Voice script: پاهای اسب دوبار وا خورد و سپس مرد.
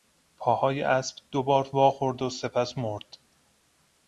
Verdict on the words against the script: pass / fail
pass